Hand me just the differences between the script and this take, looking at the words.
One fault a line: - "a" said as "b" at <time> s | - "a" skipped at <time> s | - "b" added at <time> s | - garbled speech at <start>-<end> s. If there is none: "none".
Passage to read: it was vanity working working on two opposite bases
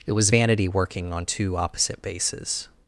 - "working" skipped at 1.1 s